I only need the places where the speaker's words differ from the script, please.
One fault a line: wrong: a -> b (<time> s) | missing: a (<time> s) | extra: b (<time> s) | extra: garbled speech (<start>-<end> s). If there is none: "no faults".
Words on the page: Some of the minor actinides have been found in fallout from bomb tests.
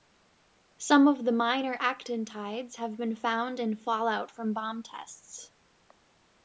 no faults